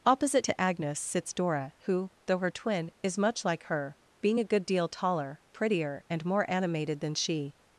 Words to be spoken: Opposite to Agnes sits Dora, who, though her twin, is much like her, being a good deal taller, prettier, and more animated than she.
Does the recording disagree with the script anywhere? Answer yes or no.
no